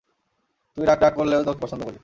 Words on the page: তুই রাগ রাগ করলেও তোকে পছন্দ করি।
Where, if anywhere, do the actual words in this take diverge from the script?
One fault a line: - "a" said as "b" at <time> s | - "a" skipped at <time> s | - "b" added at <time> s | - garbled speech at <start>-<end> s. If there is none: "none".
none